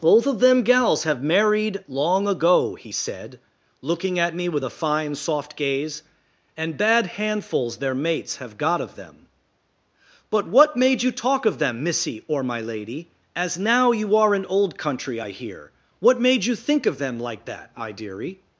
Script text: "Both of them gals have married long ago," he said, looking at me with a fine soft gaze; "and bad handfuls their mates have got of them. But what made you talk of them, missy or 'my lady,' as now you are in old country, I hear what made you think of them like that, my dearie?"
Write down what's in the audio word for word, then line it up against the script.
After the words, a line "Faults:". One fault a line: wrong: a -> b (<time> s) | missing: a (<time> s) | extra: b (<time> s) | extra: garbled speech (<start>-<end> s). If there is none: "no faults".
"Both of them gals have married long ago," he said, looking at me with a fine soft gaze; "and bad handfuls their mates have got of them. But what made you talk of them, missy or 'my lady,' as now you are in old country, I hear what made you think of them like that, I dearie?"
Faults:
wrong: my -> I (17.7 s)